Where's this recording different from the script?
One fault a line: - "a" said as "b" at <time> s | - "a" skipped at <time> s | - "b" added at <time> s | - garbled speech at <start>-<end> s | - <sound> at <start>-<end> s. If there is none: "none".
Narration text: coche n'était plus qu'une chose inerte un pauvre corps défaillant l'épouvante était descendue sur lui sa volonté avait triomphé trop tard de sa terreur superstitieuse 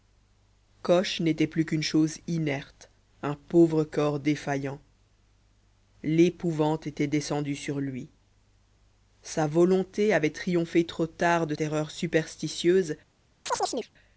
- "sa" skipped at 11.5 s
- chirp at 13.5-13.9 s